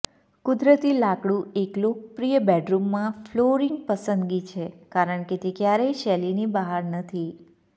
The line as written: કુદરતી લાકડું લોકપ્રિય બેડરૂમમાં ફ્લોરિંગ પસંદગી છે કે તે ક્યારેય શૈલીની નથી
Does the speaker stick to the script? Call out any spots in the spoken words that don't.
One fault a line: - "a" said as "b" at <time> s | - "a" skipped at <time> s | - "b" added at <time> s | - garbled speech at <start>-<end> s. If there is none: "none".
- "એક" added at 1.6 s
- "કારણ" added at 4.9 s
- "બહાર" added at 6.5 s